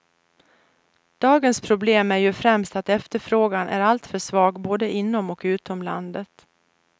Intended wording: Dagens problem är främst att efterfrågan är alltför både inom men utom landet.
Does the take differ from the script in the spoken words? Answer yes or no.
yes